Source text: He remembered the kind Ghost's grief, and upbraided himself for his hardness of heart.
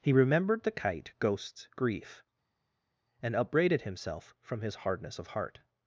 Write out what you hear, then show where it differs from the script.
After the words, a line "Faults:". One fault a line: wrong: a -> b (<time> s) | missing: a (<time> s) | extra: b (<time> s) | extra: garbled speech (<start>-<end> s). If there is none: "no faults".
He remembered the kite Ghost's grief, and upbraided himself from his hardness of heart.
Faults:
wrong: kind -> kite (0.7 s)
wrong: for -> from (4.4 s)